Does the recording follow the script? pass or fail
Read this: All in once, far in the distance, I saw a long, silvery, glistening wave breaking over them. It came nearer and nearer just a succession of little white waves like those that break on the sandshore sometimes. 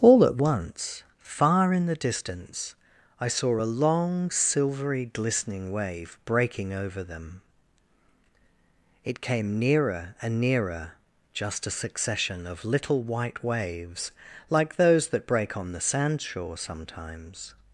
fail